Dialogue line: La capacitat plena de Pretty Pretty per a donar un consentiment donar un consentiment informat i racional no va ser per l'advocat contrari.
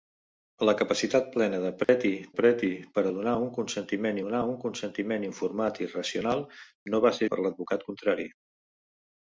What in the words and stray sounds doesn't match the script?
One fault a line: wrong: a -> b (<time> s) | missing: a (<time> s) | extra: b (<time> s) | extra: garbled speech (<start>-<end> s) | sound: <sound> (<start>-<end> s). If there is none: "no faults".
sound: dropout (1.8-1.9 s)